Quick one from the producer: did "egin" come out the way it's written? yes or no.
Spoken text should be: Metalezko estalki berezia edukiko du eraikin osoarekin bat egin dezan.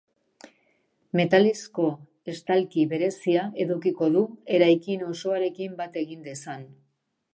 yes